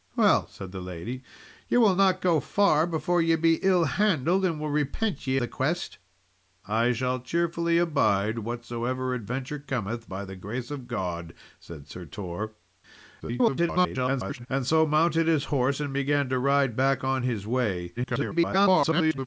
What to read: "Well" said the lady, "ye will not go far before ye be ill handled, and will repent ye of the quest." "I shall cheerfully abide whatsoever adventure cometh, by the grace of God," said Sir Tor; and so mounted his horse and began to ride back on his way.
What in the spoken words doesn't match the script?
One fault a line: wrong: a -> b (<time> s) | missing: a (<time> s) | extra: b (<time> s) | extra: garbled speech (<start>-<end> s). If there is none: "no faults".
missing: of (5.4 s)
extra: garbled speech (13.2-14.5 s)
extra: garbled speech (18.0-19.3 s)